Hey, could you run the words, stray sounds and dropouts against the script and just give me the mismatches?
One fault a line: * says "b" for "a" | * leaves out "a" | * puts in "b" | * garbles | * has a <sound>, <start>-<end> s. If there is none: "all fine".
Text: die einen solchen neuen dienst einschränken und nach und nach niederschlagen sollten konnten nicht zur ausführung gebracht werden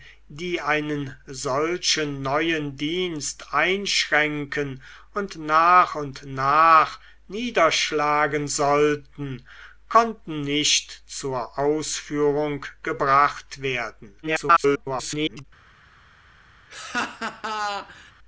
* garbles
* has a laugh, 16.7-18.1 s